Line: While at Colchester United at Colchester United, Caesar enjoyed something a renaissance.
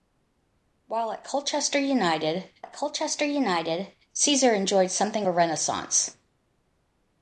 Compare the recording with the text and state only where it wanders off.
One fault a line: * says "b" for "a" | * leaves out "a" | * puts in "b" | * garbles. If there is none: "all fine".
all fine